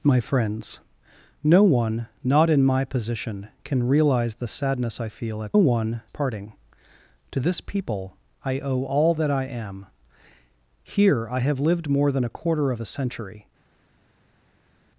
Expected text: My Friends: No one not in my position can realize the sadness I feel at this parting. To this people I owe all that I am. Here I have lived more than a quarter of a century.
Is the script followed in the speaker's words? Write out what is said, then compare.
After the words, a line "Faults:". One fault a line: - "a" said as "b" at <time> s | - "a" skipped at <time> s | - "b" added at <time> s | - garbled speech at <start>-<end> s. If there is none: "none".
My Friends: No one not in my position can realize the sadness I feel at one parting. To this people I owe all that I am. Here I have lived more than a quarter of a century.
Faults:
- "this" said as "one" at 5.6 s